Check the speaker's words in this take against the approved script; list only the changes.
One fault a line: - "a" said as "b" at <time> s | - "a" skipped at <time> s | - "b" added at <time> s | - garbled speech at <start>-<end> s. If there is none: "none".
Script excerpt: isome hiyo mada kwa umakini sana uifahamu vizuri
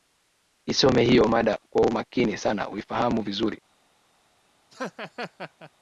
none